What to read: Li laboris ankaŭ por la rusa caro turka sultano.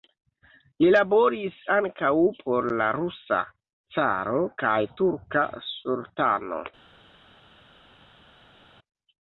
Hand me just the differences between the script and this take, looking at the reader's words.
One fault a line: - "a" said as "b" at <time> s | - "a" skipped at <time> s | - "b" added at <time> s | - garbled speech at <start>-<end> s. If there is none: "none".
- "kaj" added at 4.7 s